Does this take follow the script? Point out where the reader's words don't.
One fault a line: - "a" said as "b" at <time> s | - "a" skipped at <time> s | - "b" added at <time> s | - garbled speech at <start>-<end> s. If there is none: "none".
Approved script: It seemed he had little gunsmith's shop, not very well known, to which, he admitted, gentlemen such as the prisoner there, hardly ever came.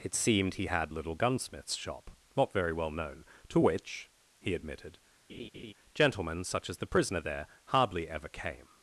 none